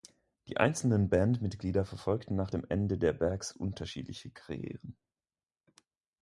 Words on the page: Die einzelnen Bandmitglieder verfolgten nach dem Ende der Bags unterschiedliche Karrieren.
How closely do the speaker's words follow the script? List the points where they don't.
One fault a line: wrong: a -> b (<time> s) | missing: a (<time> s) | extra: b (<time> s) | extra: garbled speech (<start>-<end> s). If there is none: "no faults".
no faults